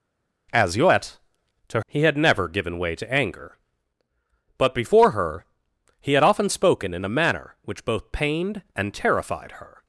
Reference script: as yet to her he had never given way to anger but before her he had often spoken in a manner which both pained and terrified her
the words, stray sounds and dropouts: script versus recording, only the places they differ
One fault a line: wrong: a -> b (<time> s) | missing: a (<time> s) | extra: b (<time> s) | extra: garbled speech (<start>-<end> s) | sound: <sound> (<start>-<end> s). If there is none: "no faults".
missing: her (1.8 s)